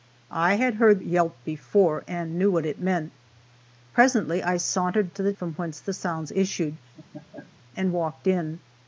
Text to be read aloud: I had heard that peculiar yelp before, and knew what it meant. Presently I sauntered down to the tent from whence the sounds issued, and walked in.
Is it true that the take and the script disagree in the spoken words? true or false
true